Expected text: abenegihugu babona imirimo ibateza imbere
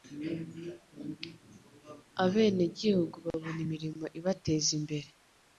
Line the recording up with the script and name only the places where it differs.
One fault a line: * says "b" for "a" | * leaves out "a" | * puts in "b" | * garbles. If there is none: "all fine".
all fine